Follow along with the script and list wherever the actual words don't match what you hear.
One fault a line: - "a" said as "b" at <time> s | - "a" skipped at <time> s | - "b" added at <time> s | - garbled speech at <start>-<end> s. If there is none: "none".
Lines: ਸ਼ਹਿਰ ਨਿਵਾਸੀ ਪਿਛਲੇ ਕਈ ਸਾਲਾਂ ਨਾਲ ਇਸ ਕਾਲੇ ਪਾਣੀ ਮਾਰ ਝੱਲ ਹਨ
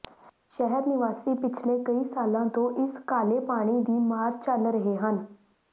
- "ਨਾਲ" said as "ਤੋਂ" at 2.5 s
- "ਦੀ" added at 3.8 s
- "ਰਹੇ" added at 4.7 s